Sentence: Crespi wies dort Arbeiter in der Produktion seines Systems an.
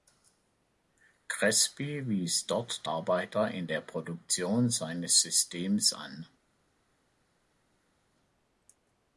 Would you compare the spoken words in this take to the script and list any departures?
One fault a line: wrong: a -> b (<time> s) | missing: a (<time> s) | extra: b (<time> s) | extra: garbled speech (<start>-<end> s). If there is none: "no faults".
no faults